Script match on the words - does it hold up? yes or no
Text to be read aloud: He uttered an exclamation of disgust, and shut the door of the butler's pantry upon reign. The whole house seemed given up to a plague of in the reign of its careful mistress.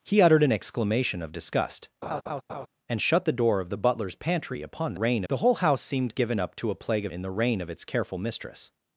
yes